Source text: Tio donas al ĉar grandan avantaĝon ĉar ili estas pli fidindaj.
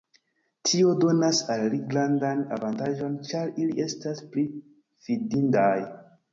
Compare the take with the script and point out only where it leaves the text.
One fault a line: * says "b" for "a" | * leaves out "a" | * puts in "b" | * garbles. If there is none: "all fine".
* says "ili" for "ĉar"